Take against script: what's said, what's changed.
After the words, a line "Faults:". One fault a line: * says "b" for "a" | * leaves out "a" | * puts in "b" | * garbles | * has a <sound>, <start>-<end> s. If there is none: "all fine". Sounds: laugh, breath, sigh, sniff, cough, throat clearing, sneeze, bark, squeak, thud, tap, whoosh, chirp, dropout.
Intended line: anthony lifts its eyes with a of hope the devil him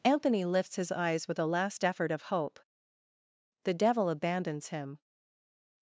anthony lifts his eyes with a last effort of hope the devil abandons him
Faults:
* says "his" for "its"
* puts in "last effort"
* puts in "abandons"